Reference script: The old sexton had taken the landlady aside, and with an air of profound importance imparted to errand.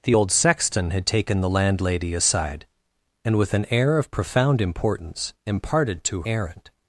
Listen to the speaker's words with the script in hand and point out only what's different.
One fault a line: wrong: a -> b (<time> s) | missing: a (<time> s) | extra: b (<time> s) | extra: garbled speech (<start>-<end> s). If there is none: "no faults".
no faults